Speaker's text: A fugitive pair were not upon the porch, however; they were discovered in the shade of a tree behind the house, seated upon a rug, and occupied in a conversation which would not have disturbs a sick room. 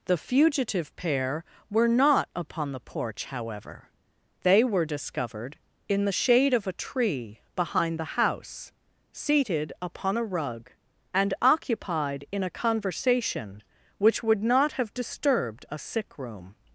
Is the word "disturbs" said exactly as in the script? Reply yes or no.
no